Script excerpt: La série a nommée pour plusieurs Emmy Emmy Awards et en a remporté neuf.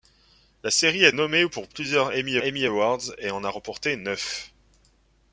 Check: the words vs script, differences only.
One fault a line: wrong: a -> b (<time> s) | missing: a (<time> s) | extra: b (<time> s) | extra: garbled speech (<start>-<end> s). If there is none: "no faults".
no faults